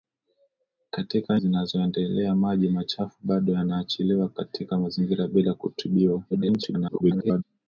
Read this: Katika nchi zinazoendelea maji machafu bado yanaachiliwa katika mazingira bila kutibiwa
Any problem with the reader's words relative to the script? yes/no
yes